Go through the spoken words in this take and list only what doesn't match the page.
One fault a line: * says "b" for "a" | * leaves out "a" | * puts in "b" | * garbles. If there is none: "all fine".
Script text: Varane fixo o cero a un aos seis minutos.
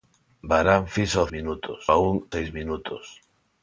* says "minutos" for "cero"
* leaves out "aos"